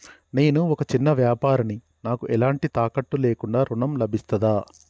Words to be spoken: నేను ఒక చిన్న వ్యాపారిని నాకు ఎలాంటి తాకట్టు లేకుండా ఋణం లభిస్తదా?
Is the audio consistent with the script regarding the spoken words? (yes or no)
yes